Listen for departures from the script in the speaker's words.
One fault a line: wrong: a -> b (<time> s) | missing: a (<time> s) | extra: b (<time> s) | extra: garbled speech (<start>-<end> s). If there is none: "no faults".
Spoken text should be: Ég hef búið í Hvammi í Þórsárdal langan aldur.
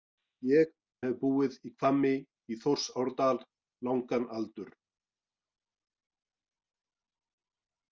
no faults